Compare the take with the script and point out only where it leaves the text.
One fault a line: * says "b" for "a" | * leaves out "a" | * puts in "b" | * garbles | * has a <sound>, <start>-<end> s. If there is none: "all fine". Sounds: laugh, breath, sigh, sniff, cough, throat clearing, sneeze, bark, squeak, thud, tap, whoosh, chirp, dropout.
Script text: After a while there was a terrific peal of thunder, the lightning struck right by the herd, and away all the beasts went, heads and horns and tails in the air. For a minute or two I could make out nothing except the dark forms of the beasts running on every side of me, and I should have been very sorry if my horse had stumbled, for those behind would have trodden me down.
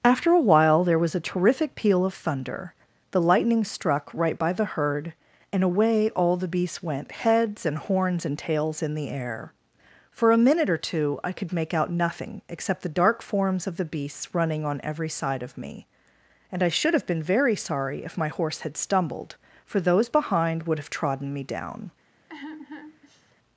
* has a sigh, 22.3-23.4 s